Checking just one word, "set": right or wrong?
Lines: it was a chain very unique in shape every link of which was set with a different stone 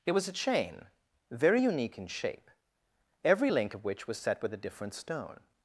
right